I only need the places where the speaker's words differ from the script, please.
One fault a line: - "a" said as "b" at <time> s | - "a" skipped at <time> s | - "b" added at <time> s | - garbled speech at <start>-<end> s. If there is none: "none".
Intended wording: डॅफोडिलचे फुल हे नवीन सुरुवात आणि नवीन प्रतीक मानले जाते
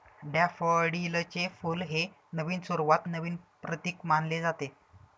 - "आणि" skipped at 3.1 s